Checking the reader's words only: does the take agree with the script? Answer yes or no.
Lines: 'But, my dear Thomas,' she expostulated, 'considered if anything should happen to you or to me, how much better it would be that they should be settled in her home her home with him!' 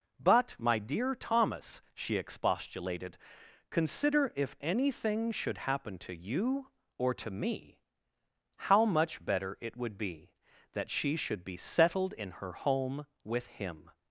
no